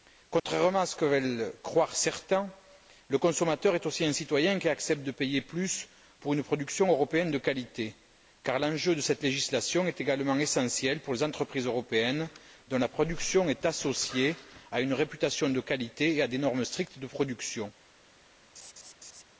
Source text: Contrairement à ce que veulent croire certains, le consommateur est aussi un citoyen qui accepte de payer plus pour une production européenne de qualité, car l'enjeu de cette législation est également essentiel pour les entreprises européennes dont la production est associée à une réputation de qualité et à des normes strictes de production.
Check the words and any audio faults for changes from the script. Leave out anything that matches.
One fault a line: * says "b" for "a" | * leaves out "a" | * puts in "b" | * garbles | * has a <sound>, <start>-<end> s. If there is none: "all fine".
* has a dropout, 0.4-0.5 s
* has a laugh, 18.5-19.2 s